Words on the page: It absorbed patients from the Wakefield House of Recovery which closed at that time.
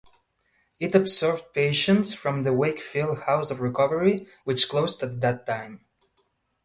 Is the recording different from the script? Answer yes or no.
no